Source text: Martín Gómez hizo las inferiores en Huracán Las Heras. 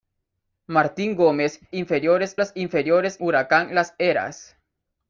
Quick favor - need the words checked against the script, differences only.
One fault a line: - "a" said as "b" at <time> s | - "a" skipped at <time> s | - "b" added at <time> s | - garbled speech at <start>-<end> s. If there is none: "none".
- "hizo" said as "inferiores" at 1.7 s
- "en" skipped at 3.2 s